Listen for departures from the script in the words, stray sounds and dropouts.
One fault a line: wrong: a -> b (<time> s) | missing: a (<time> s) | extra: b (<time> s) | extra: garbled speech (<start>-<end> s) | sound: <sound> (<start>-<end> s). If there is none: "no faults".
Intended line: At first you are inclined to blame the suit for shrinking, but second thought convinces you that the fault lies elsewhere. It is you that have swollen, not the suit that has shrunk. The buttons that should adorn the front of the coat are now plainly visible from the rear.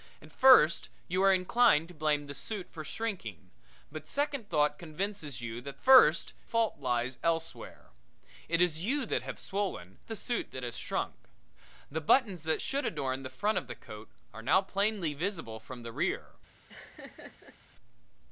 wrong: the -> first (5.8 s)
missing: not (10.0 s)
sound: laugh (16.7-17.6 s)